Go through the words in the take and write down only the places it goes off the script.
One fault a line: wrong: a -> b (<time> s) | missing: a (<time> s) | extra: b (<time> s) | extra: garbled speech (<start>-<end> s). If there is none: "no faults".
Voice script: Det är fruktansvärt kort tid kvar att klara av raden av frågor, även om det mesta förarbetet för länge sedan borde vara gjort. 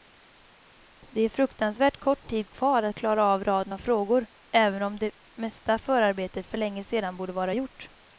no faults